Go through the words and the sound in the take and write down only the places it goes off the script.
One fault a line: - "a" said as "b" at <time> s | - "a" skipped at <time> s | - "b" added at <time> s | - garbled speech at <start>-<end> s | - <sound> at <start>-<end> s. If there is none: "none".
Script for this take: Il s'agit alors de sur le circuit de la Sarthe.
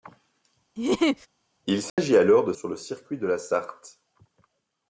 - laugh at 0.8-1.3 s
- dropout at 1.9-2.0 s